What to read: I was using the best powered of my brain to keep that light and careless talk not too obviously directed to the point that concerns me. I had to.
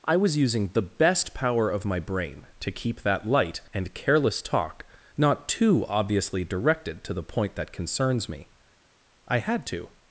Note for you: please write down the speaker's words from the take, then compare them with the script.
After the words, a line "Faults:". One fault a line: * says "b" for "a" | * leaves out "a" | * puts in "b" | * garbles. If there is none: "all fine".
I was using the best power of my brain to keep that light and careless talk not too obviously directed to the point that concerns me. I had to.
Faults:
* says "power" for "powered"